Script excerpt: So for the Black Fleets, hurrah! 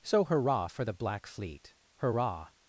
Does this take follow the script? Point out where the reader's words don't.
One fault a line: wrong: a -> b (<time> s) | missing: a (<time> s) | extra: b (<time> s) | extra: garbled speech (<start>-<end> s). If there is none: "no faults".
extra: hurrah (0.2 s)
wrong: Fleets -> Fleet (1.3 s)